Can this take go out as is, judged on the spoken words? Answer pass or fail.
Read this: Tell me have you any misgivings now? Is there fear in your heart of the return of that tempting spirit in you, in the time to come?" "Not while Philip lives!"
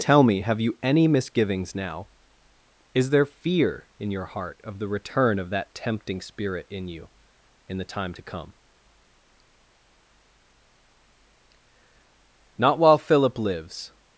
pass